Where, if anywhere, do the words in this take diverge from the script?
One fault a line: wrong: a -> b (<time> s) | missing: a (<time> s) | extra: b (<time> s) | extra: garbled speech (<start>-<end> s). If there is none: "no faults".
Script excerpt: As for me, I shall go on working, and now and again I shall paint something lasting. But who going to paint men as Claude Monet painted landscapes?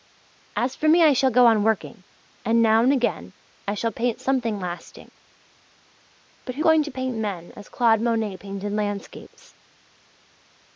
no faults